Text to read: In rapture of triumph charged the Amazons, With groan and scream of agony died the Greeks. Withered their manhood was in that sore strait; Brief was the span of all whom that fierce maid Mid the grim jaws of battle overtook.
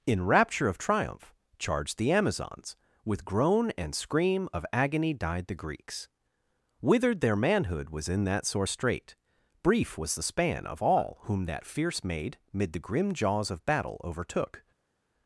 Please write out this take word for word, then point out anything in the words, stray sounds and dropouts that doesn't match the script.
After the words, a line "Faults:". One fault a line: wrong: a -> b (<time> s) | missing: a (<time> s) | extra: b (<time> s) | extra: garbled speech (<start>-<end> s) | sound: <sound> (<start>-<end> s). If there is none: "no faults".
In rapture of triumph charged the Amazons, With groan and scream of agony died the Greeks. Withered their manhood was in that sore strait; Brief was the span of all whom that fierce maid Mid the grim jaws of battle overtook.
Faults:
no faults